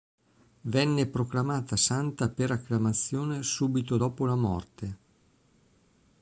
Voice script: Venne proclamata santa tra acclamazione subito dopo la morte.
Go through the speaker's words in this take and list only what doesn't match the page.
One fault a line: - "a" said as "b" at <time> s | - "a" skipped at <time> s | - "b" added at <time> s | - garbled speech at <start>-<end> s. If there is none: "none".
- "tra" said as "per" at 2.3 s